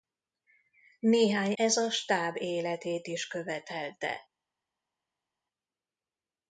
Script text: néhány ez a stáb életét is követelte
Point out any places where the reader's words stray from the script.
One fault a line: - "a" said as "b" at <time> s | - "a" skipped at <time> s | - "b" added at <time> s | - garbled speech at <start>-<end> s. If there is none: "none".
none